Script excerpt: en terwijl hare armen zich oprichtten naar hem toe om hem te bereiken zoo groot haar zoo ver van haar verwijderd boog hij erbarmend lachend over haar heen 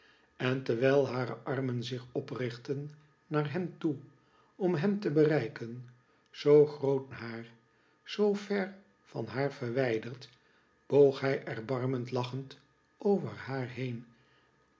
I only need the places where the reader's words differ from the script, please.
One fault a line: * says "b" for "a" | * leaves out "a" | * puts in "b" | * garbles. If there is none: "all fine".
all fine